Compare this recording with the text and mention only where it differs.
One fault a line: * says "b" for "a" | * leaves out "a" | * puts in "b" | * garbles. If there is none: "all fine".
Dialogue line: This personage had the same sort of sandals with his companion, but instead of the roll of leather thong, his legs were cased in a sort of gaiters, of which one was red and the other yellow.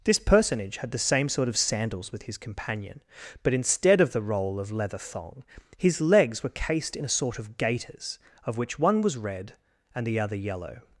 all fine